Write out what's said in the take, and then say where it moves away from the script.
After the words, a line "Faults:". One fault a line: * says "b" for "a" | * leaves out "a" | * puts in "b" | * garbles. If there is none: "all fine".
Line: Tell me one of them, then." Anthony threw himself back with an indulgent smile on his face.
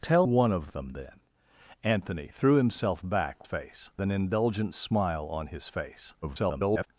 Tell one of them, then." Anthony threw himself back face an indulgent smile on his face. [garbled]
Faults:
* leaves out "me"
* says "face" for "with"
* garbles